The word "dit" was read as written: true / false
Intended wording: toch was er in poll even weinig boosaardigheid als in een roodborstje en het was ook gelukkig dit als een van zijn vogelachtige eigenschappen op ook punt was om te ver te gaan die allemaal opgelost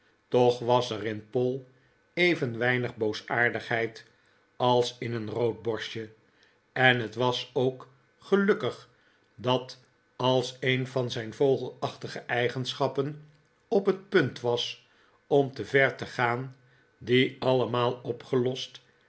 false